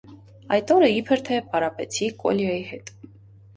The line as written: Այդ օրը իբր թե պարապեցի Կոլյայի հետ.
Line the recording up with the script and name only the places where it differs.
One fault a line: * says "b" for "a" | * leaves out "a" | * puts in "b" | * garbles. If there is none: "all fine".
all fine